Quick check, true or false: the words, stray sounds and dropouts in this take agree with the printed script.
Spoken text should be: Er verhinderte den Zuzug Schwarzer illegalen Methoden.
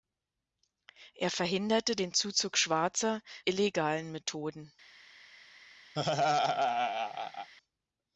false